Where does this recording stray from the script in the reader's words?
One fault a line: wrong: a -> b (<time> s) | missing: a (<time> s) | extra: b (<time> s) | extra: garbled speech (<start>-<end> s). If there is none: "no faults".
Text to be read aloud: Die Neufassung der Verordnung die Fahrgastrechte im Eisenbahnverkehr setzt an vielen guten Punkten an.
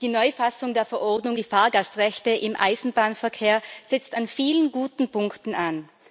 no faults